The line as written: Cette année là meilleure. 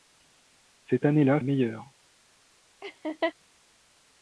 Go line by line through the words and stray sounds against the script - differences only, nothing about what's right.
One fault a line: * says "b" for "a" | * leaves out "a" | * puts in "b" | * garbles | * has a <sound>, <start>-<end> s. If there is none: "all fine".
* has a laugh, 2.8-3.3 s